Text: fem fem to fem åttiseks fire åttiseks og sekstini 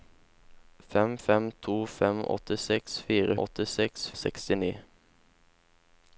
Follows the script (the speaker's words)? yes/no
yes